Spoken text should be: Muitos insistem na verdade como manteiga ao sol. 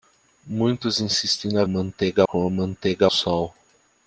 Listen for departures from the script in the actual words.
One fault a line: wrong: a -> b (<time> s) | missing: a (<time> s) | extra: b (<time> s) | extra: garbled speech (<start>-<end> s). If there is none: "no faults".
wrong: verdade -> manteiga (1.7 s)
missing: ao (3.1 s)